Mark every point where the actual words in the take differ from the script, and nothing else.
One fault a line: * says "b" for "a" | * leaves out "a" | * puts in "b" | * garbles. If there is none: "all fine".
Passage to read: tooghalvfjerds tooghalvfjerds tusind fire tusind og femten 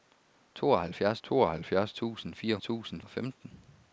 all fine